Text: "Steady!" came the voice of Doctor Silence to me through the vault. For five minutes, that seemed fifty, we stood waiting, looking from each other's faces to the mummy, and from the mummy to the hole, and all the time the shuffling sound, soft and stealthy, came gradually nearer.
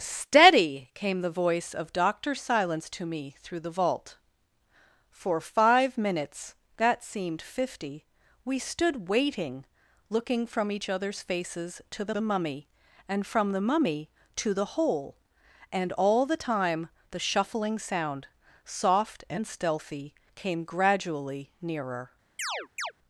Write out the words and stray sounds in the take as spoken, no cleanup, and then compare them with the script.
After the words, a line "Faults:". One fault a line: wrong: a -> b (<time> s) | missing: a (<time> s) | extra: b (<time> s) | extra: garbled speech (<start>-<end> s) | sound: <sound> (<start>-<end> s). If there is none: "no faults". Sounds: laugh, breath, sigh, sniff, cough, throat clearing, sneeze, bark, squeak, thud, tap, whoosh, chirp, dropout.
"Steady!" came the voice of Doctor Silence to me through the vault. For five minutes, that seemed fifty, we stood waiting, looking from each other's faces to the the mummy, and from the mummy to the hole, and all the time the shuffling sound, soft and stealthy, came gradually nearer.
Faults:
extra: the (12.1 s)
sound: chirp (22.4-22.9 s)